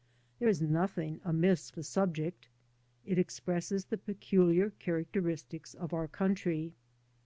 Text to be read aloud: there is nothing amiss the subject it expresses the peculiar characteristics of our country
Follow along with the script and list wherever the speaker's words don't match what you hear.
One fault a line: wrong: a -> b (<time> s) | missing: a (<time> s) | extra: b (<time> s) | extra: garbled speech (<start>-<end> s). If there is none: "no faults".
no faults